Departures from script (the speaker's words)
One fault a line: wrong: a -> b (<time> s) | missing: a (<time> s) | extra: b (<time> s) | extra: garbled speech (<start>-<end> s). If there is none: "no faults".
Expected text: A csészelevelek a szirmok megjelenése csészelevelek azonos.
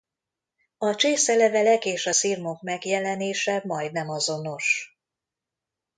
extra: és (1.9 s)
wrong: csészelevelek -> majdnem (3.6 s)